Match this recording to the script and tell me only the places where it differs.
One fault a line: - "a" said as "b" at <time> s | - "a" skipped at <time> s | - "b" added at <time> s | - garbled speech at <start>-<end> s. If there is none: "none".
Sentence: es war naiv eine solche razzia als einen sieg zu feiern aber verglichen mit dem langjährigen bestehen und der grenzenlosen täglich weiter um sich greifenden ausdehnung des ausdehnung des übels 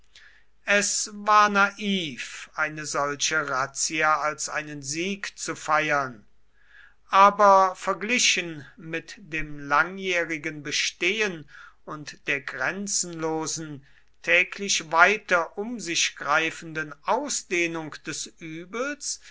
- "ausdehnung des" skipped at 18.2 s